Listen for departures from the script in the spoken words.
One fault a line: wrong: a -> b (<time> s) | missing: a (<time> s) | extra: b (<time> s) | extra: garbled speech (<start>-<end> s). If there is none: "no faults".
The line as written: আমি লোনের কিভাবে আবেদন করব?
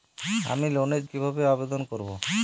no faults